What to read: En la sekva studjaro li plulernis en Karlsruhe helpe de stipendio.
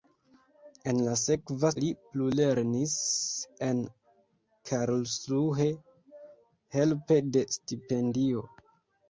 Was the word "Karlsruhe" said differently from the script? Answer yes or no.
no